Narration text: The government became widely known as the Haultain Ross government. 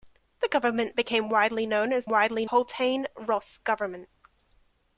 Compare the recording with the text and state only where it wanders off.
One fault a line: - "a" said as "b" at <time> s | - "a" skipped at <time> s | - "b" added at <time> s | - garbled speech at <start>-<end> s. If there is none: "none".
- "the" said as "widely" at 2.1 s